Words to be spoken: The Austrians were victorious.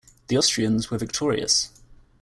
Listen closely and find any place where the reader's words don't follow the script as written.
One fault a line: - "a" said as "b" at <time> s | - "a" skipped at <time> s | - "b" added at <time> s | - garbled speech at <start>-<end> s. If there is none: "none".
none